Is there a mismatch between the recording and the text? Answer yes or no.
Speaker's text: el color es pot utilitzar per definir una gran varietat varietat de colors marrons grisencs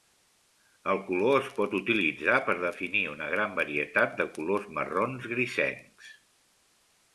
yes